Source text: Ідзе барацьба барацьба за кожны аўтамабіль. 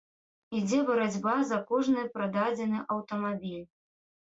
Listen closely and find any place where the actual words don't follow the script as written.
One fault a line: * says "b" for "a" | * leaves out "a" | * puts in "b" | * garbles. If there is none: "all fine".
* leaves out "барацьба"
* puts in "прададзены"